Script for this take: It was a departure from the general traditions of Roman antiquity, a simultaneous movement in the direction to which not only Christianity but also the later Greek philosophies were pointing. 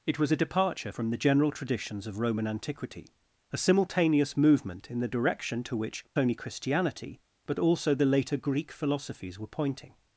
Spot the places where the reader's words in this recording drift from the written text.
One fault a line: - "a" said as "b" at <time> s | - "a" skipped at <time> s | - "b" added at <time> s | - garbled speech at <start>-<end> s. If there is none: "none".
- "not" skipped at 6.0 s